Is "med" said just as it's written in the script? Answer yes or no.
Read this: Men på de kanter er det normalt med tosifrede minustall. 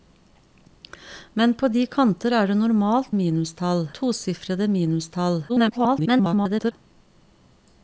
no